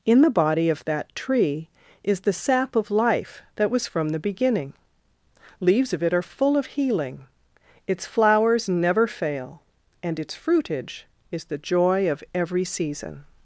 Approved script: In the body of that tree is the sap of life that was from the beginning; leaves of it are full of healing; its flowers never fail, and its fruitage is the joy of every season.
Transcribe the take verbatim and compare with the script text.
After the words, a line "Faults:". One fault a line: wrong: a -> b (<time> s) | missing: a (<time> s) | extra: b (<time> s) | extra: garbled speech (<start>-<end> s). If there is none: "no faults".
In the body of that tree is the sap of life that was from the beginning; leaves of it are full of healing; its flowers never fail, and its fruitage is the joy of every season.
Faults:
no faults